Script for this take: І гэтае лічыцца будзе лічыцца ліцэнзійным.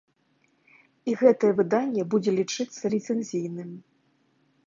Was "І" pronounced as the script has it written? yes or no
yes